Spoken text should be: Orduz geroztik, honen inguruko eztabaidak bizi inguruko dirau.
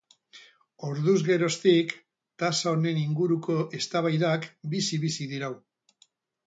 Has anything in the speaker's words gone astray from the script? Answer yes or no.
yes